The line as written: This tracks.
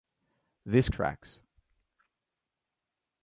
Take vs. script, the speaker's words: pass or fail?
pass